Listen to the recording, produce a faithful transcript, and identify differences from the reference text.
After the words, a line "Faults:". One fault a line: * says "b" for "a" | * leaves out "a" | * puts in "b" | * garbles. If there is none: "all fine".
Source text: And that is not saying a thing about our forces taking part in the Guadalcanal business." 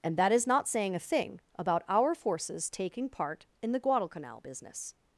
And that is not saying a thing about our forces taking part in the Guadalcanal business."
Faults:
all fine